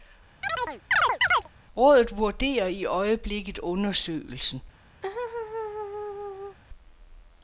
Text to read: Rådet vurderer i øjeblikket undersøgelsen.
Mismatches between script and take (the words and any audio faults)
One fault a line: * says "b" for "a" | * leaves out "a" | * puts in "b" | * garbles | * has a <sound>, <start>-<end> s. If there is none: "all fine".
* has a chirp, 0.4-1.5 s
* has a laugh, 5.0-6.6 s